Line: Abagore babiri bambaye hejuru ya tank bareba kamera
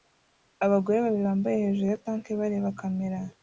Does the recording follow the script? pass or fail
pass